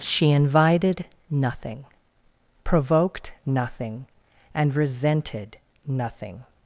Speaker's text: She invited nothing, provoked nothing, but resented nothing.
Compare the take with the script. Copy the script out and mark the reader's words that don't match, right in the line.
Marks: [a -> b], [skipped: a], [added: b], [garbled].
She invited nothing, provoked nothing, [but -> and] resented nothing.